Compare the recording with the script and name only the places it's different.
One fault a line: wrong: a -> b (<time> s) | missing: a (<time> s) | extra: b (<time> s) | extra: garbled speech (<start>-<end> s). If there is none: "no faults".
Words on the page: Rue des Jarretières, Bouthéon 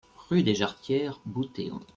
no faults